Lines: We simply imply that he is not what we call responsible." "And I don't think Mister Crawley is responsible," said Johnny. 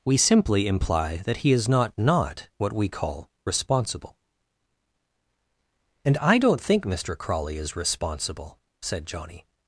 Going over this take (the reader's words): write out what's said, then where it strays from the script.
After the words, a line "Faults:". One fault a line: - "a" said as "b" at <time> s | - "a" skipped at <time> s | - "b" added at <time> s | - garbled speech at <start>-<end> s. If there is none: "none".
We simply imply that he is not not what we call responsible." "And I don't think Mister Crawley is responsible," said Johnny.
Faults:
- "not" added at 1.9 s